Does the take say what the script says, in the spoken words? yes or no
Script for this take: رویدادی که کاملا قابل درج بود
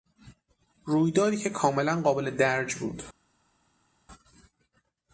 yes